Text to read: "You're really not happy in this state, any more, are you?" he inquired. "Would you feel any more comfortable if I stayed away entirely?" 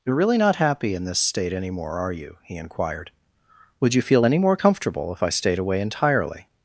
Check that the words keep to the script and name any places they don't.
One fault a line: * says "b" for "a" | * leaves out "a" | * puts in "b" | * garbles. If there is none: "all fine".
all fine